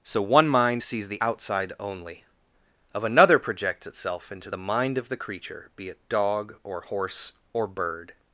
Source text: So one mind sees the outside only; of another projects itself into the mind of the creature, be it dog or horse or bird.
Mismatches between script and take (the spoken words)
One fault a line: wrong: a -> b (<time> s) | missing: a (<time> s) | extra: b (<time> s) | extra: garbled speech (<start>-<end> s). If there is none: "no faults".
no faults